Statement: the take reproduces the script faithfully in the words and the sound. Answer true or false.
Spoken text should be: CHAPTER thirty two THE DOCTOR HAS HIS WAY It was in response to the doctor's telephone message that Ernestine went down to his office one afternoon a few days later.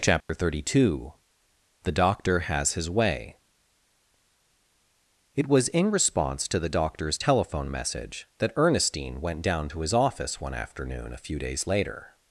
false